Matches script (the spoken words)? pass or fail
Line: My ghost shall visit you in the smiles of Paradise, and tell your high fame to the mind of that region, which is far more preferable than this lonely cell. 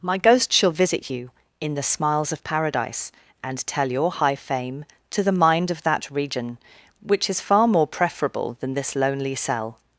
pass